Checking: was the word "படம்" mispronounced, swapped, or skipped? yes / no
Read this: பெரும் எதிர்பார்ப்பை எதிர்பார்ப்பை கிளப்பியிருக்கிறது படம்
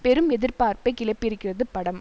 no